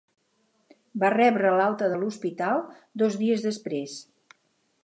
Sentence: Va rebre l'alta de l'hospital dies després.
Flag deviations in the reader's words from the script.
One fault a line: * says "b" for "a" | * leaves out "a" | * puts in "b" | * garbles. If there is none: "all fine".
* puts in "dos"